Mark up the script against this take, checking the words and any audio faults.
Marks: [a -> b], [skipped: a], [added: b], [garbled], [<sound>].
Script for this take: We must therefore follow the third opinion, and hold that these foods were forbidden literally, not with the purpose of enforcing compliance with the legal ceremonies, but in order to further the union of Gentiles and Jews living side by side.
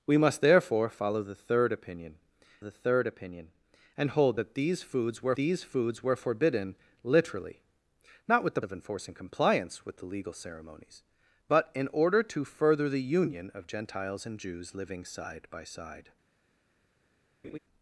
We must therefore follow the third opinion, [added: the third opinion] and hold that these foods were [added: these foods were] forbidden literally, not with the [skipped: purpose] of enforcing compliance with the legal ceremonies, but in order to further the union of Gentiles and Jews living side by side. [laugh]